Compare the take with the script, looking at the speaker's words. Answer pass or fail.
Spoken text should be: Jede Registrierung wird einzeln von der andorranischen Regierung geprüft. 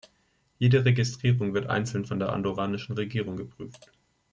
pass